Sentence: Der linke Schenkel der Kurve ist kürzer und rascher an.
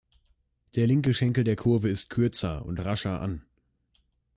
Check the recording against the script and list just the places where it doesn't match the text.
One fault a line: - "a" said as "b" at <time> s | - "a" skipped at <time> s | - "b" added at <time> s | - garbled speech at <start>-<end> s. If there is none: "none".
none